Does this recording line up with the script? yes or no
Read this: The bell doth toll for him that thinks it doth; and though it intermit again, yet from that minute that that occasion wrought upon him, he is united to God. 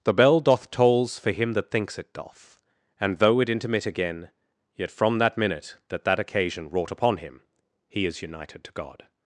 no